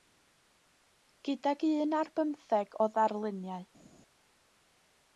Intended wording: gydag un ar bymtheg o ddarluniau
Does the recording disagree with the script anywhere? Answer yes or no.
no